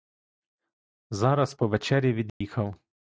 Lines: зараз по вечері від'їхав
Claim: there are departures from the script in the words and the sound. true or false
true